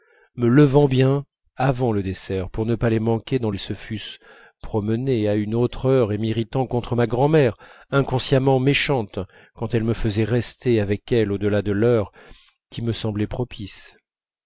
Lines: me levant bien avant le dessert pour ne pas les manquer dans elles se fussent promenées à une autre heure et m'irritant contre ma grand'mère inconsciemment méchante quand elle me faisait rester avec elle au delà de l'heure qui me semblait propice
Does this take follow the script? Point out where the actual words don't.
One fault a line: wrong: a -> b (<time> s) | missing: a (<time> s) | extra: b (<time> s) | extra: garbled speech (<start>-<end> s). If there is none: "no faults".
no faults